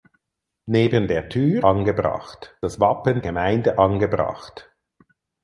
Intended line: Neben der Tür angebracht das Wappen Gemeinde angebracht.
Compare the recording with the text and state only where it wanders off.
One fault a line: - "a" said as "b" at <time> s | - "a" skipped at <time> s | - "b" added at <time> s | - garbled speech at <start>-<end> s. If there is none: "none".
none